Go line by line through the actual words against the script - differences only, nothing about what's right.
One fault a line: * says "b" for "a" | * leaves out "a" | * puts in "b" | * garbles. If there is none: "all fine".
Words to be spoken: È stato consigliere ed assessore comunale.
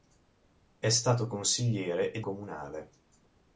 * leaves out "assessore"